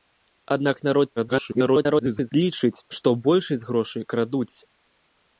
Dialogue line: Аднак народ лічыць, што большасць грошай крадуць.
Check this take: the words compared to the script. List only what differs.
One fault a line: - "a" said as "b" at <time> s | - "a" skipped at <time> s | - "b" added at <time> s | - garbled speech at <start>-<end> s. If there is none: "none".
- garbled speech at 1.2-2.3 s